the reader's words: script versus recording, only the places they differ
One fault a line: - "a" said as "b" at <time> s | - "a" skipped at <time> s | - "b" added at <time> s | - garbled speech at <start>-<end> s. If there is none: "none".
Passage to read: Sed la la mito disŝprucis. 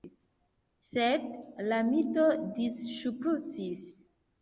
- "la" skipped at 1.8 s